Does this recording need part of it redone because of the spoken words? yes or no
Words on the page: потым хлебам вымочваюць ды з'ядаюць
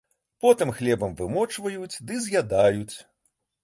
no